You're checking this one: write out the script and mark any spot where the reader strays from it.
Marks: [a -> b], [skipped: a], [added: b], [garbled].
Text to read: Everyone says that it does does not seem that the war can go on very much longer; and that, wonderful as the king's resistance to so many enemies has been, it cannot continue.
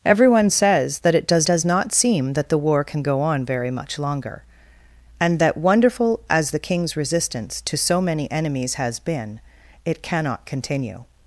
Everyone says that it does does not seem that the war can go on very much longer; and that, wonderful as the king's resistance to so many enemies has been, it cannot continue.